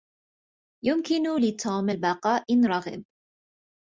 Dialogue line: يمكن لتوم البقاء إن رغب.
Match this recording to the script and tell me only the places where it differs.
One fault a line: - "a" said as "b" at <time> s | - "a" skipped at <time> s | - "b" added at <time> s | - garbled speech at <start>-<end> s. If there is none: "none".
none